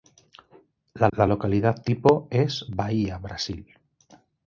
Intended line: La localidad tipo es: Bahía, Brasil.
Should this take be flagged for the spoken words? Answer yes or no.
yes